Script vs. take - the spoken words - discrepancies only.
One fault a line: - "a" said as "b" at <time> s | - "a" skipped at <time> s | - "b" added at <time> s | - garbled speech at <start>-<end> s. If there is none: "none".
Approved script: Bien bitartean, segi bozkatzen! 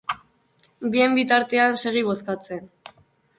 none